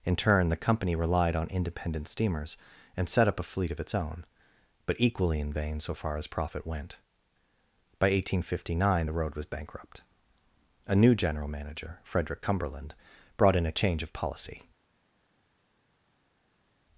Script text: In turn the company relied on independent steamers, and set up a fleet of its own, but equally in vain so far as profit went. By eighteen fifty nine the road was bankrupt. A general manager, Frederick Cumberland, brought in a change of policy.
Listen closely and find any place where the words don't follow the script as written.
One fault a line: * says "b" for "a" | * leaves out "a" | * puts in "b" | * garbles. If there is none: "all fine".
* puts in "new"